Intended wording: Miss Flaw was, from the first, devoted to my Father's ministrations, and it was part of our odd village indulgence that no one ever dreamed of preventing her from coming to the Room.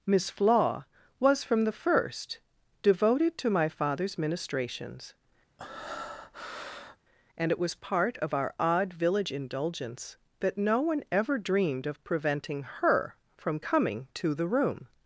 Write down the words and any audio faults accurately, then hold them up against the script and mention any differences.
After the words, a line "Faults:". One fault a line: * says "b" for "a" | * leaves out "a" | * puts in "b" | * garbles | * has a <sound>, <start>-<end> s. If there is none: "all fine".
Miss Flaw was, from the first, devoted to my Father's ministrations, and it was part of our odd village indulgence that no one ever dreamed of preventing her from coming to the Room.
Faults:
* has a breath, 5.6-7.0 s